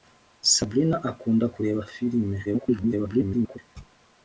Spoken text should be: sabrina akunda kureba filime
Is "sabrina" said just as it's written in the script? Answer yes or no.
yes